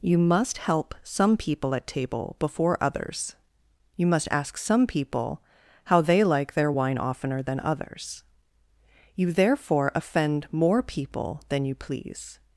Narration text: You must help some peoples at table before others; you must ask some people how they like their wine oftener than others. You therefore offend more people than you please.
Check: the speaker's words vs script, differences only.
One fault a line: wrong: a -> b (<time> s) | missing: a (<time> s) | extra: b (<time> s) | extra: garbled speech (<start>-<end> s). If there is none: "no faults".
wrong: peoples -> people (1.4 s)